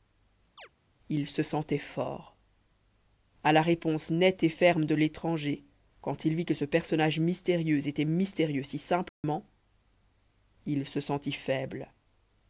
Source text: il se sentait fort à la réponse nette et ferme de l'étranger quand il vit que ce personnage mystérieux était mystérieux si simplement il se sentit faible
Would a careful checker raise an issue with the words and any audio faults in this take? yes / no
yes